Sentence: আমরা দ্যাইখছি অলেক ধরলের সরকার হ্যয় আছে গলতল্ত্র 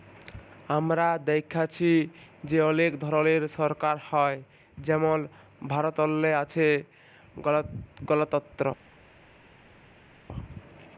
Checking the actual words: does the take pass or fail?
fail